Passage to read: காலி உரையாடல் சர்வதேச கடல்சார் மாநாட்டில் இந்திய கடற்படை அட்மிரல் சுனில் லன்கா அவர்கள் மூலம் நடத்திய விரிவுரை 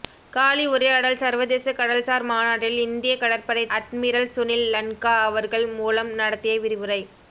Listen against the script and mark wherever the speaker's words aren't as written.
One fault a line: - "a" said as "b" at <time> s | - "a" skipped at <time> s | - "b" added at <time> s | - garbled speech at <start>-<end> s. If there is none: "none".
none